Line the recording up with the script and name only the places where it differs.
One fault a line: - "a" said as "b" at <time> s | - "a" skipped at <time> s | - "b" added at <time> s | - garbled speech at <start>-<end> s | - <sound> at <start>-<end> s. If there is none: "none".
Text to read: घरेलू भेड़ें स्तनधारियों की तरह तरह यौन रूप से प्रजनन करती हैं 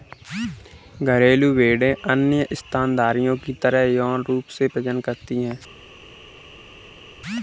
- "अन्य" added at 2.1 s
- "तरह" skipped at 3.8 s